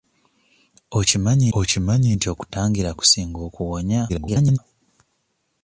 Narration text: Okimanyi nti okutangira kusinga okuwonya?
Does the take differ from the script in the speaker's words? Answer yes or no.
yes